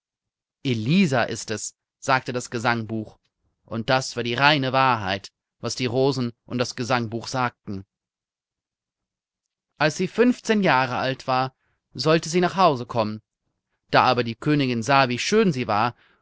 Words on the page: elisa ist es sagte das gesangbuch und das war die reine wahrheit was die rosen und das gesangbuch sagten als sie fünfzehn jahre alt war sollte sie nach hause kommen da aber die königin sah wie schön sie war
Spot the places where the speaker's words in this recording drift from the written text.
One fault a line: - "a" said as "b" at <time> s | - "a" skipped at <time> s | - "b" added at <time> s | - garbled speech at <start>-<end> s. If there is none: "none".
none